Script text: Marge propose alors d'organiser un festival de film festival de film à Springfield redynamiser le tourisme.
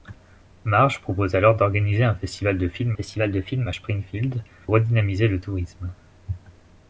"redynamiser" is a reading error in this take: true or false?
false